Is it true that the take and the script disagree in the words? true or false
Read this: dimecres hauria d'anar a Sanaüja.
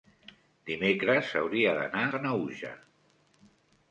true